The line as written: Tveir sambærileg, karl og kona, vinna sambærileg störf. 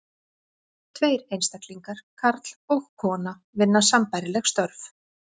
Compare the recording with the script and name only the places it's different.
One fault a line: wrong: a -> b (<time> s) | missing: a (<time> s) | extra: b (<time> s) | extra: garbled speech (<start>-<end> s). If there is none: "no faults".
wrong: sambærileg -> einstaklingar (1.4 s)